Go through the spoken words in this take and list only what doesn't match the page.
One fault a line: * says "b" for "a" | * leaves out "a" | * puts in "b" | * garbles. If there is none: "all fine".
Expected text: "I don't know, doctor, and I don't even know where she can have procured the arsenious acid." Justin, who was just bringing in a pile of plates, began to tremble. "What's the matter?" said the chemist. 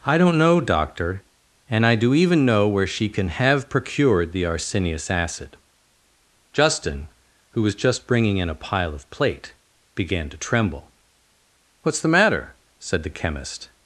* says "do" for "don't"
* says "plate" for "plates"